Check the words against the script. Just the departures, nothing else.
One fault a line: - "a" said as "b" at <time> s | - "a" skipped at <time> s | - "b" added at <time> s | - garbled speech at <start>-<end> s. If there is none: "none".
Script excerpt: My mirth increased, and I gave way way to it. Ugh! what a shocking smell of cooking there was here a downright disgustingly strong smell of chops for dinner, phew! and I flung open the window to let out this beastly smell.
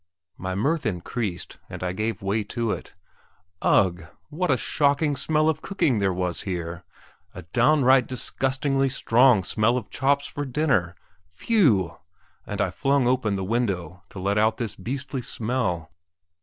- "way" skipped at 2.4 s